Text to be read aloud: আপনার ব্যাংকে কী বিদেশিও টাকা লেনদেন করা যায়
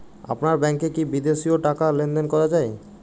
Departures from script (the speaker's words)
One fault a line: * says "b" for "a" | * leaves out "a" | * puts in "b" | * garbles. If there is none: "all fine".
all fine